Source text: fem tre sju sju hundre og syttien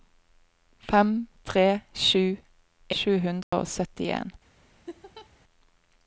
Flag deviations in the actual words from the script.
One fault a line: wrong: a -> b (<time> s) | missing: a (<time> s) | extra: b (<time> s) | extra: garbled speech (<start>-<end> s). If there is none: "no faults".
no faults